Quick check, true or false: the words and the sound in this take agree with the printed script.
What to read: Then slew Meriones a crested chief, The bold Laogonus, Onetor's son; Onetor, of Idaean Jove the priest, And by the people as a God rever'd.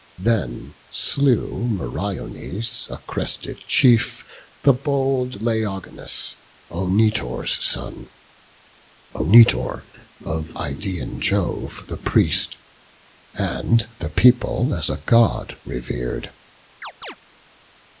false